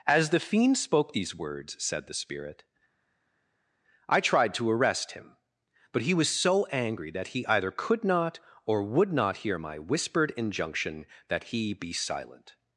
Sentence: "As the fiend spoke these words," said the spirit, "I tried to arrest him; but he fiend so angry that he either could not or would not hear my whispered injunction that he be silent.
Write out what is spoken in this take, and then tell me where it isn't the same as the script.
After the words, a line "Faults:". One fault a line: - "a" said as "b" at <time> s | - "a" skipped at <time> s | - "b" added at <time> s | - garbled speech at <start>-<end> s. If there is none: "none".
"As the fiend spoke these words," said the spirit, "I tried to arrest him; but he was so angry that he either could not or would not hear my whispered injunction that he be silent.
Faults:
- "fiend" said as "was" at 6.1 s